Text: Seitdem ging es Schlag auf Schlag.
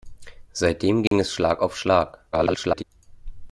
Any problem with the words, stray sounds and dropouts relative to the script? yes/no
yes